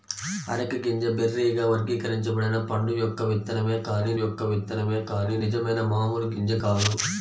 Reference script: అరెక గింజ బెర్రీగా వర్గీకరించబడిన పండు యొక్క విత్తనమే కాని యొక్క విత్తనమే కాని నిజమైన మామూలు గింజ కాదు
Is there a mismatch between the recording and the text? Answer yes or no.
no